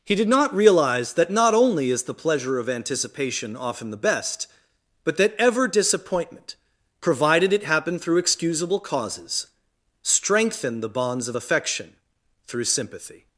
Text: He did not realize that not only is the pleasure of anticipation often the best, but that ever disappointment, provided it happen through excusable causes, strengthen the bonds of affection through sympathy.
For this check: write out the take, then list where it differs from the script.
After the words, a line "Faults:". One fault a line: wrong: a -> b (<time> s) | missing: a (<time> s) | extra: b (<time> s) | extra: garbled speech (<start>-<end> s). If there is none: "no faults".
He did not realize that not only is the pleasure of anticipation often the best, but that ever disappointment, provided it happen through excusable causes, strengthen the bonds of affection through sympathy.
Faults:
no faults